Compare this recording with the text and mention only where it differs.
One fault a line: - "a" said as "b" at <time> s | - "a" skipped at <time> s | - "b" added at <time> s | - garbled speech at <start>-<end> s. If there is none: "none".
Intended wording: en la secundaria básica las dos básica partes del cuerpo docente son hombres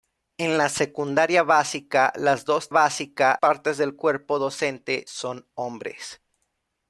none